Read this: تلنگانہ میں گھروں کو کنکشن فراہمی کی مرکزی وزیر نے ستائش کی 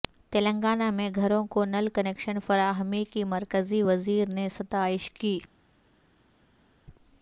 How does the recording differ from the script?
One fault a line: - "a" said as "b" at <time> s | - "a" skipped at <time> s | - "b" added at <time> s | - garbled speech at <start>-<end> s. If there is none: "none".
- "نل" added at 1.6 s